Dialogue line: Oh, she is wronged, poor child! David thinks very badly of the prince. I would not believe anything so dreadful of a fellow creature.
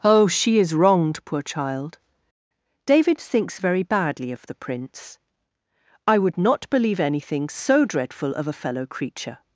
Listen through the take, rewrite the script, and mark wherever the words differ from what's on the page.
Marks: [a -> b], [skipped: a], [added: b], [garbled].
Oh, she is wronged, poor child! David thinks very badly of the prince. I would not believe anything so dreadful of a fellow creature.